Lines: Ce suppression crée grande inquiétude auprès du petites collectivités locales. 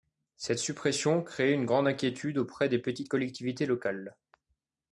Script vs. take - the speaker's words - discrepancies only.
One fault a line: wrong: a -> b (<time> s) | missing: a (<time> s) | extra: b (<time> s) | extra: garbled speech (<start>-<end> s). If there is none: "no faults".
wrong: Ce -> Cette (0.3 s)
extra: une (1.5 s)
wrong: du -> des (2.7 s)